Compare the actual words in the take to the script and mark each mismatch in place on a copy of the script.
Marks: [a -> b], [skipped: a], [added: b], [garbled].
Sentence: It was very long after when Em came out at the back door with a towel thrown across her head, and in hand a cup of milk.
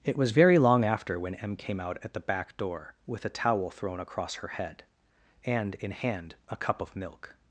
It was very long after when Em came out at the back door with a towel thrown across her head, and in hand a cup of milk.